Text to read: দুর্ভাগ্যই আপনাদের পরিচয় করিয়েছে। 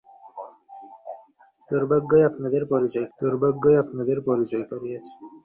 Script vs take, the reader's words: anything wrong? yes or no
yes